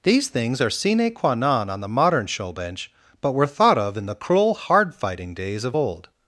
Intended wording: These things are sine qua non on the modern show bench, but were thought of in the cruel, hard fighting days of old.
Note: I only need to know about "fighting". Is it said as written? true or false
true